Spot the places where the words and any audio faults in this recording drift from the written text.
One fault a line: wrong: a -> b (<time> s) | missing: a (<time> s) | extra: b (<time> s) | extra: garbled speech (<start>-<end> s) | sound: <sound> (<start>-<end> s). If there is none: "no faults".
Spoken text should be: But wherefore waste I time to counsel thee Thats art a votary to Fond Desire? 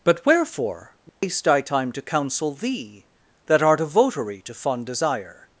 sound: dropout (1.1-1.2 s)
wrong: Thats -> That (3.5 s)